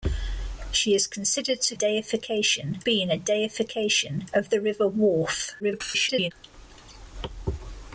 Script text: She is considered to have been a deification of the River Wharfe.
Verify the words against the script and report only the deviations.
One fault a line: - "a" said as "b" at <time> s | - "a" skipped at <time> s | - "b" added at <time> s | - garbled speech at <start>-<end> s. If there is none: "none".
- "have" said as "deification" at 1.7 s
- garbled speech at 5.6-6.3 s